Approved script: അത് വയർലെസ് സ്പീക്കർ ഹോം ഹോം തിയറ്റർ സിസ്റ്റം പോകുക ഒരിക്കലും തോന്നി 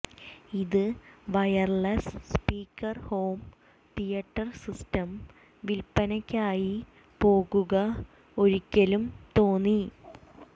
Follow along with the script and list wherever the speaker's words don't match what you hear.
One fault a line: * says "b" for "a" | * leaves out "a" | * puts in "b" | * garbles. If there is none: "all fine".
* says "ഇത്" for "അത്"
* leaves out "ഹോം"
* puts in "വിൽപ്പനയ്ക്കായി"